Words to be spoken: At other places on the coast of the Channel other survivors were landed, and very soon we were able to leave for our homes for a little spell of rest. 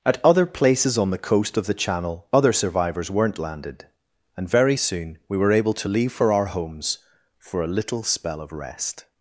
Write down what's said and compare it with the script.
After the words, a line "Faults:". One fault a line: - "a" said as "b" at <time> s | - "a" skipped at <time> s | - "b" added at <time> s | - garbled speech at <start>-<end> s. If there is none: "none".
At other places on the coast of the Channel other survivors weren't landed, and very soon we were able to leave for our homes for a little spell of rest.
Faults:
- "were" said as "weren't" at 3.1 s